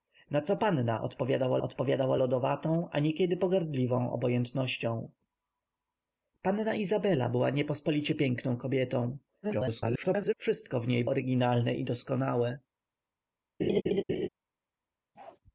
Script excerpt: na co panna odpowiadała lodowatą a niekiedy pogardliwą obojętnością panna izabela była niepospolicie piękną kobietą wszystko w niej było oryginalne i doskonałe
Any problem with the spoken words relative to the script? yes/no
yes